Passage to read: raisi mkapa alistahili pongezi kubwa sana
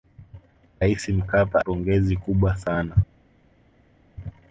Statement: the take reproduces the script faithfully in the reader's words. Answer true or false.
false